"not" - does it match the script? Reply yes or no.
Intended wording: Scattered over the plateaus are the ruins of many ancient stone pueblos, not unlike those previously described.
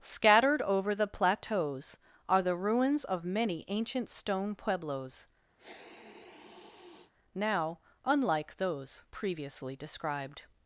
no